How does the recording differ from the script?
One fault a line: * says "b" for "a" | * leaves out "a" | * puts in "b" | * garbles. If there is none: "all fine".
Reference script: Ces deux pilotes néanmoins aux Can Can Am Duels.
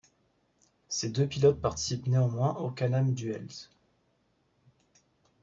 * puts in "participent"
* leaves out "Can"